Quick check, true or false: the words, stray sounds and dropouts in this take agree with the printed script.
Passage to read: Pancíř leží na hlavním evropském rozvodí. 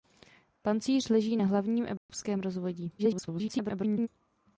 false